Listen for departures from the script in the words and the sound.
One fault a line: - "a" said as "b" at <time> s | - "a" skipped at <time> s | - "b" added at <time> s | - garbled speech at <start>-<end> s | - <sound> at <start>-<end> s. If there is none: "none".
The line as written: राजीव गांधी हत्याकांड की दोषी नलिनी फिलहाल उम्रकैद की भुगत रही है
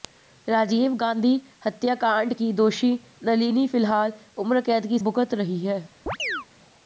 - chirp at 6.1-6.5 s